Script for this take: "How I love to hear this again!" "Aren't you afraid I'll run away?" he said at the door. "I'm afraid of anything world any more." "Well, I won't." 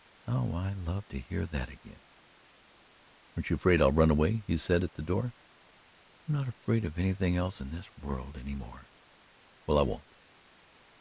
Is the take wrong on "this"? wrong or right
wrong